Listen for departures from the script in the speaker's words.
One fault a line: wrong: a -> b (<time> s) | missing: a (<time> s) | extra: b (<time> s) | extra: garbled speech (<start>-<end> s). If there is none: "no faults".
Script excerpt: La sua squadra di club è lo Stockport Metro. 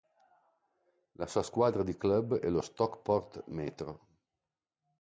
no faults